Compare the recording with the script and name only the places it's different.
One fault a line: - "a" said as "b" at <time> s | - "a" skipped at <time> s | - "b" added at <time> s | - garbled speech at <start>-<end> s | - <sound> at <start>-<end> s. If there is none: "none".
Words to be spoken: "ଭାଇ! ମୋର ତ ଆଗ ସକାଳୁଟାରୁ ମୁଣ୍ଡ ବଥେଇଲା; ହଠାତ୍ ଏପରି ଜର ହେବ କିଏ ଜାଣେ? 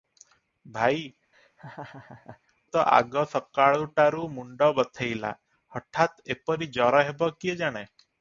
- "ମୋର" skipped at 1.0 s
- laugh at 1.3-2.4 s